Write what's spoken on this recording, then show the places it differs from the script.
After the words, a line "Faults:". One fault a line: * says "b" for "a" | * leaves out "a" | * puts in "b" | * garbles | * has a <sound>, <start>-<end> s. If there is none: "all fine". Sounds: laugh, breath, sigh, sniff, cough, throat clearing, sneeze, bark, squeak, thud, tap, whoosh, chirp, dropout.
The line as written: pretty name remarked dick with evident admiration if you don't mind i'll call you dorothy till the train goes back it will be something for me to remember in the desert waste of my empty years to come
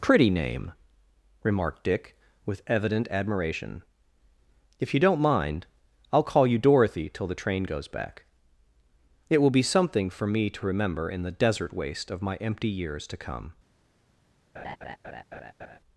pretty name remarked dick with evident admiration if you don't mind i'll call you dorothy till the train goes back it will be something for me to remember in the desert waste of my empty years to come
Faults:
* has a laugh, 14.5-15.8 s